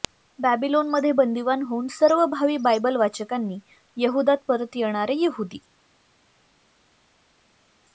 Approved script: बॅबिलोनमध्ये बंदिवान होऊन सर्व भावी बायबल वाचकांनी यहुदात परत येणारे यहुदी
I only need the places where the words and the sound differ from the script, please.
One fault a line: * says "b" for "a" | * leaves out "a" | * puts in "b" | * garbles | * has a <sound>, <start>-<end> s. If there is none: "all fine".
all fine